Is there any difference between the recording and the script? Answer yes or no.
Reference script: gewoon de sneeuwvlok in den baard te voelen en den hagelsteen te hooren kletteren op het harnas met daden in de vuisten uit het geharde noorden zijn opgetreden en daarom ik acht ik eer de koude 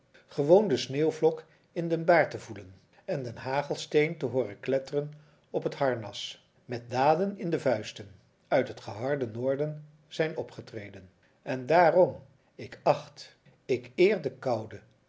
no